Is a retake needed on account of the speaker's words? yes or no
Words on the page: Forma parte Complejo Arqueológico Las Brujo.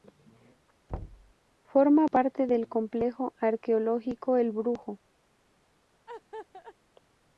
yes